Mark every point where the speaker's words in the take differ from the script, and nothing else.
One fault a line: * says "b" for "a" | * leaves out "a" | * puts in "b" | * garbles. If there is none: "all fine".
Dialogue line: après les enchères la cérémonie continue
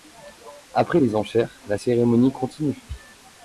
all fine